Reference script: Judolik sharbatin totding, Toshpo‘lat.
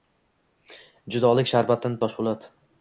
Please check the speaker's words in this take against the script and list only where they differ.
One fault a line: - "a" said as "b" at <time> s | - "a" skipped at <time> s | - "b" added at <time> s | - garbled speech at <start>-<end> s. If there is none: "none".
- "totding" skipped at 2.0 s